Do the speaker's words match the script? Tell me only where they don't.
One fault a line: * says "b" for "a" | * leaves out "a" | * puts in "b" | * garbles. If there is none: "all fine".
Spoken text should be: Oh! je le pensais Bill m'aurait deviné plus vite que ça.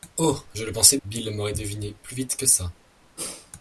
all fine